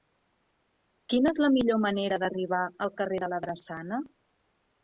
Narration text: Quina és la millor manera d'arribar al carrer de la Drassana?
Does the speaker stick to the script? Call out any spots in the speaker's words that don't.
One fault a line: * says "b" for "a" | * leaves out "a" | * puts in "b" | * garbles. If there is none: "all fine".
all fine